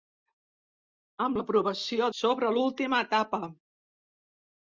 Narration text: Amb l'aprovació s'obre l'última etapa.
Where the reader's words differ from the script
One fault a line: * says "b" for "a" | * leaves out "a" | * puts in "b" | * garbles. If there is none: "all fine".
all fine